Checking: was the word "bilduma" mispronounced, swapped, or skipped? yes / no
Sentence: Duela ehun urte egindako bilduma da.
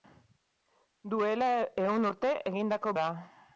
yes